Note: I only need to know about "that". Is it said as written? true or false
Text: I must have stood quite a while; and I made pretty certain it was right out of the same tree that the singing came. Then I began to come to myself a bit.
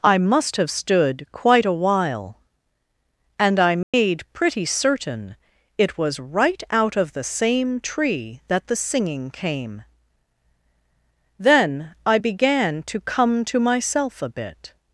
true